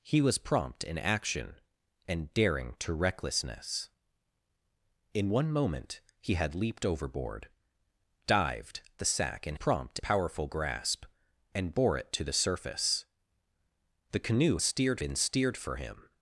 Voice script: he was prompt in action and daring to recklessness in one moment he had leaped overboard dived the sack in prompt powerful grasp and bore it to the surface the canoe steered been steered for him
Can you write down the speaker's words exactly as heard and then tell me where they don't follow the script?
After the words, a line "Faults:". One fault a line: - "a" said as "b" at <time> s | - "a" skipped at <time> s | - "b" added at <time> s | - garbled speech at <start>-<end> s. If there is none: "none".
he was prompt in action and daring to recklessness in one moment he had leaped overboard dived the sack in prompt powerful grasp and bore it to the surface the canoe steered been steered for him
Faults:
none